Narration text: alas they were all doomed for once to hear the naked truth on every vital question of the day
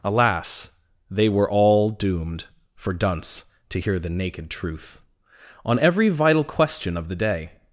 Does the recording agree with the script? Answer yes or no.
no